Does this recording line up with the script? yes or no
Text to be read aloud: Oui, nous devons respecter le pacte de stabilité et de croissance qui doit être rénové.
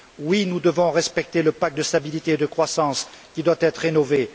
yes